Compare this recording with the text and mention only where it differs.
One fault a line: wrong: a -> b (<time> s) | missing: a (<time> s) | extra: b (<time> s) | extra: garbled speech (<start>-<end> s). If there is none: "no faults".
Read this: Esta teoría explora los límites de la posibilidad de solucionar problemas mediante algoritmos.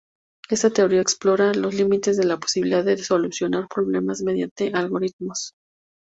no faults